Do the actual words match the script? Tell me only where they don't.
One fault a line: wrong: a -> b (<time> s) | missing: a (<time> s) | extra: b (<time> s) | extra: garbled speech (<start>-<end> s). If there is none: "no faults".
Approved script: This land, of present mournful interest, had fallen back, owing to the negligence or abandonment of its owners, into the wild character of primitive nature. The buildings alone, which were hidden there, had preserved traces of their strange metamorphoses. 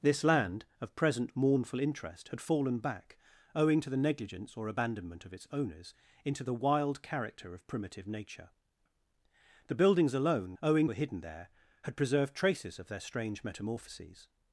wrong: which -> owing (10.6 s)